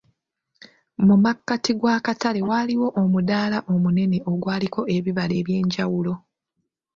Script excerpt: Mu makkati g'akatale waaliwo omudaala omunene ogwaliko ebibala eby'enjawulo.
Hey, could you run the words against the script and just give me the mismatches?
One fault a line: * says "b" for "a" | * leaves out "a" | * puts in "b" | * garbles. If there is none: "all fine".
all fine